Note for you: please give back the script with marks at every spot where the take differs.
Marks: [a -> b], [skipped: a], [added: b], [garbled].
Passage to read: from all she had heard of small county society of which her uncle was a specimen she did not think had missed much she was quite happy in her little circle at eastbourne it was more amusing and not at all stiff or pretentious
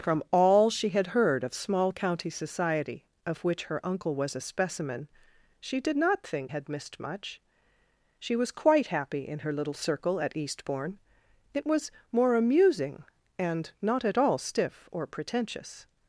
from all she had heard of small county society of which her uncle was a specimen she did not think had missed much she was quite happy in her little circle at eastbourne it was more amusing and not at all stiff or pretentious